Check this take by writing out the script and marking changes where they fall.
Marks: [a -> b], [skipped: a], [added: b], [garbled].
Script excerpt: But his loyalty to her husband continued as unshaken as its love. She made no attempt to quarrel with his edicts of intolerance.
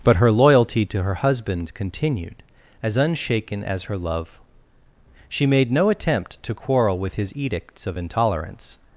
But [his -> her] loyalty to her husband continued as unshaken as [its -> her] love. She made no attempt to quarrel with his edicts of intolerance.